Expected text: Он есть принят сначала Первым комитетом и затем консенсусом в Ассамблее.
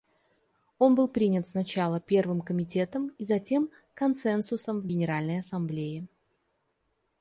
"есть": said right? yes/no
no